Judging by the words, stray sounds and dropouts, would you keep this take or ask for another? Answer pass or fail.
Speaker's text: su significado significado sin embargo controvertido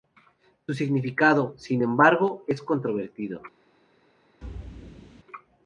fail